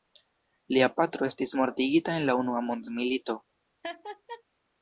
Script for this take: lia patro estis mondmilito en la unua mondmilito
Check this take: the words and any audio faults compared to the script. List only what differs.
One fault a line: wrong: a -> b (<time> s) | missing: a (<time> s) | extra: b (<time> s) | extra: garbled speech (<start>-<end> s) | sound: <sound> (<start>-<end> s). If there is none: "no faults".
wrong: mondmilito -> mortigita (1.6 s)
sound: laugh (3.8-4.4 s)